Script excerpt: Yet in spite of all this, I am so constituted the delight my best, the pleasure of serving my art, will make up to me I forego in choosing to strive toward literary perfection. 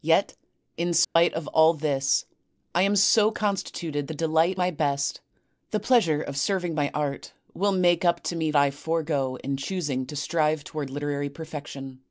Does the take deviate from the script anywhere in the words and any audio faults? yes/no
yes